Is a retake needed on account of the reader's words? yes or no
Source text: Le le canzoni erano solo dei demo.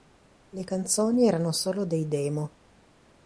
yes